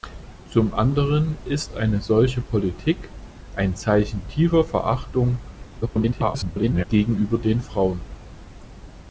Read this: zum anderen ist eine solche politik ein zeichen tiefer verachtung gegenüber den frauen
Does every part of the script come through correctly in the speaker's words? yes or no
no